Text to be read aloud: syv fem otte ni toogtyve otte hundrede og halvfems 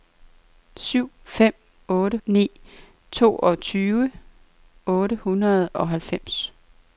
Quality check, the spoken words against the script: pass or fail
pass